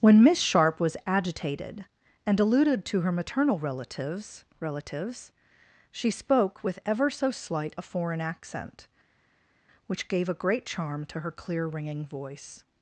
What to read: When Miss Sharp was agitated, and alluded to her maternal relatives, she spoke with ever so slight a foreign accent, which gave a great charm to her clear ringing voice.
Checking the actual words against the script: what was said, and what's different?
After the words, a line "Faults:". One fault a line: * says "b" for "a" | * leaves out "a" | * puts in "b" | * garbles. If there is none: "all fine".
When Miss Sharp was agitated, and alluded to her maternal relatives relatives, she spoke with ever so slight a foreign accent, which gave a great charm to her clear ringing voice.
Faults:
* puts in "relatives"